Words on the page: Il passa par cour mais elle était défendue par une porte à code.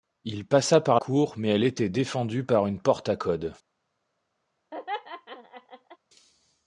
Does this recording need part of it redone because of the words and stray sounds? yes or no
yes